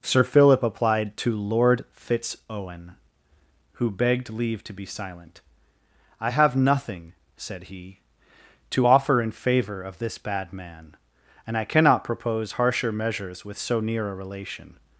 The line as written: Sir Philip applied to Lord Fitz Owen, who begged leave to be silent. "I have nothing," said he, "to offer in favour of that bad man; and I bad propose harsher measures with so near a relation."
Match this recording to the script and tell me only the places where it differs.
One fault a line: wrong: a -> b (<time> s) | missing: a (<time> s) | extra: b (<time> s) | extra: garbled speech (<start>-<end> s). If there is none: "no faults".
wrong: that -> this (10.0 s)
wrong: bad -> cannot (11.6 s)